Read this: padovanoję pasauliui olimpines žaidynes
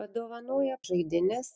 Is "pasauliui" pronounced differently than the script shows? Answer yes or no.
yes